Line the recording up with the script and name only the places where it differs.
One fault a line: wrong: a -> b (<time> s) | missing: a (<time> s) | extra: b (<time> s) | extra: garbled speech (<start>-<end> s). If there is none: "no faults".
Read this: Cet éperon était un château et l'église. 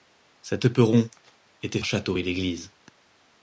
no faults